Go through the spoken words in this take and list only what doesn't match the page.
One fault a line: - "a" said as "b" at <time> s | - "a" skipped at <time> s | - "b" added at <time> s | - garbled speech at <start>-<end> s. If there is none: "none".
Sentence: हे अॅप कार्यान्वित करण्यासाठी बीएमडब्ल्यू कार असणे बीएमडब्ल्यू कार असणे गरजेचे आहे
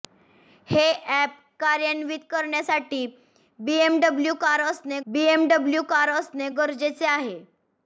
none